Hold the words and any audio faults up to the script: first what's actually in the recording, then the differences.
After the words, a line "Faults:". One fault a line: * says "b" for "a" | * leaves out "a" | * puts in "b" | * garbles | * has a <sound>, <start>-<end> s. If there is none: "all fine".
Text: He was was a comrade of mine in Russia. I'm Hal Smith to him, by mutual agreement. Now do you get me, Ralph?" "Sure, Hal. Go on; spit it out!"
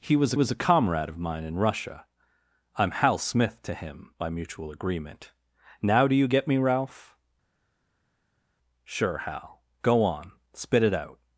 He was was a comrade of mine in Russia. I'm Hal Smith to him, by mutual agreement. Now do you get me, Ralph?" "Sure, Hal. Go on; spit it out!"
Faults:
all fine